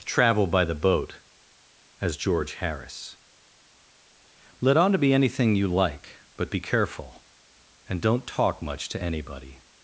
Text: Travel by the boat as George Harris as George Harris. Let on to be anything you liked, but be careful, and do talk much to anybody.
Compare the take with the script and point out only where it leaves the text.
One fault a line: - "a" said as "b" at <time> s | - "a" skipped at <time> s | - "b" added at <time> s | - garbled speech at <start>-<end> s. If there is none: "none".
- "as George Harris" skipped at 3.2 s
- "liked" said as "like" at 5.7 s
- "do" said as "don't" at 8.0 s